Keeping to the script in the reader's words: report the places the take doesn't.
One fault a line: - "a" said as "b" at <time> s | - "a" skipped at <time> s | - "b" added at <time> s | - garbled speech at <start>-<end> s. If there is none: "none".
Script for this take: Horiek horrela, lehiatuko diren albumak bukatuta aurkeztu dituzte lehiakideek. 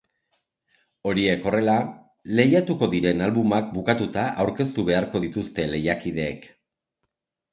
- "beharko" added at 4.9 s